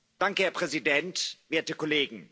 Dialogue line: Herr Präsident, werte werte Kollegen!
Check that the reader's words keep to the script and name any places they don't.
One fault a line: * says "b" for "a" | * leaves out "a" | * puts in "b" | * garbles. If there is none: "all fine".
* leaves out "werte"